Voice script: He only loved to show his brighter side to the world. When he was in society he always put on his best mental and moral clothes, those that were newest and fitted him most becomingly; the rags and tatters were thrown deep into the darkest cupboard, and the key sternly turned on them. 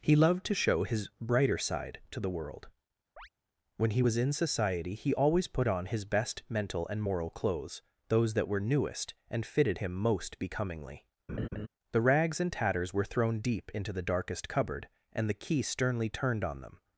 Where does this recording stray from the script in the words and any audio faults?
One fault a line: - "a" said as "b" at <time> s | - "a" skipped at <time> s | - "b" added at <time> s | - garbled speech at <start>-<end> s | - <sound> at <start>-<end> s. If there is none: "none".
- "only" skipped at 0.1 s
- chirp at 3.2-3.3 s
- laugh at 11.3-11.7 s